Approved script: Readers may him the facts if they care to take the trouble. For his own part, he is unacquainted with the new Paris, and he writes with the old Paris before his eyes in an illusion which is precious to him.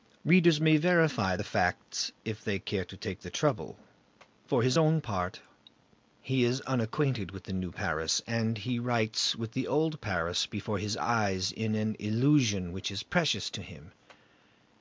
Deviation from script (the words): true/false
true